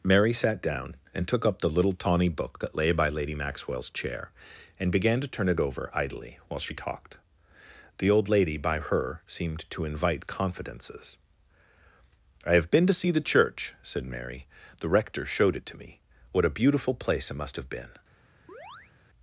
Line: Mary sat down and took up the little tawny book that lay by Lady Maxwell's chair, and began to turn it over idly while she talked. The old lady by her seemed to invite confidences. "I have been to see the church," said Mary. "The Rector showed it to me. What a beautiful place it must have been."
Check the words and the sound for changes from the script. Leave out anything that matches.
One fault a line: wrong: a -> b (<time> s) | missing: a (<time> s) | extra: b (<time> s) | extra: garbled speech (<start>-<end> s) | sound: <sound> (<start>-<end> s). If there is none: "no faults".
sound: chirp (18.5-18.9 s)